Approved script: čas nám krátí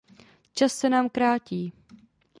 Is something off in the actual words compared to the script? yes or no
yes